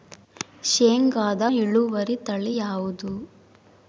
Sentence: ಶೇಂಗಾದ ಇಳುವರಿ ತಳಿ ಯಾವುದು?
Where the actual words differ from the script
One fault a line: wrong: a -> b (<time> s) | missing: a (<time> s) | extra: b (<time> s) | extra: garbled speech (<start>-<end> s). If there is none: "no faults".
no faults